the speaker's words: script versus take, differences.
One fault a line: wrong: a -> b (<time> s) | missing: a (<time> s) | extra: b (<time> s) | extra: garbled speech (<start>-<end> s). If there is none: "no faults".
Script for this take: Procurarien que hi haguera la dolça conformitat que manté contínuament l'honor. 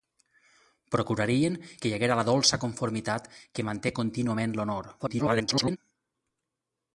extra: garbled speech (5.0-5.8 s)